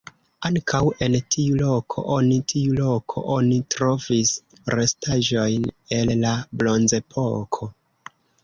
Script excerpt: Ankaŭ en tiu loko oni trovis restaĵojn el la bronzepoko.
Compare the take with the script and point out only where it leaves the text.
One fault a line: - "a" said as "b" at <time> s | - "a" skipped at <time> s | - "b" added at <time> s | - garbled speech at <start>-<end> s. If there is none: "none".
- "tiu loko oni" added at 2.5 s